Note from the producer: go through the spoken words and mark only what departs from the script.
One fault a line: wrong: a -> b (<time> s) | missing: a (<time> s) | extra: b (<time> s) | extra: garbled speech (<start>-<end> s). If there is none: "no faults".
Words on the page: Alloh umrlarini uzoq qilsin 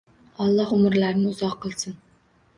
no faults